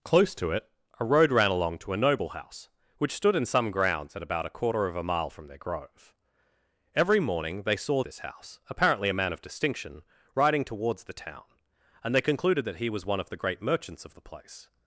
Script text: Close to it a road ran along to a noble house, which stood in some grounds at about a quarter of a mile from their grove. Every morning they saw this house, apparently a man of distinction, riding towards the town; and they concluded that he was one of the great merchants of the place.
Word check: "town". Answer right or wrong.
right